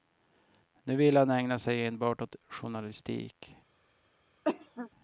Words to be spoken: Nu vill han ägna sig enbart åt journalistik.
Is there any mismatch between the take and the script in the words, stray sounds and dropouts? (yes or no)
yes